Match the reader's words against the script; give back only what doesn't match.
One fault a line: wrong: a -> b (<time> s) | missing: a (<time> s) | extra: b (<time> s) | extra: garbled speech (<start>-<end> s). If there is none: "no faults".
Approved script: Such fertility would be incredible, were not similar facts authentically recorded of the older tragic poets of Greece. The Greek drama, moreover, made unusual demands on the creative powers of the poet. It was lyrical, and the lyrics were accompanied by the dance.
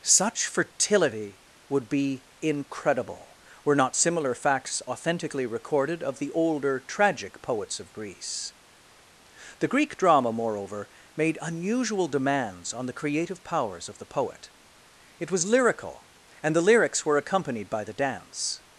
no faults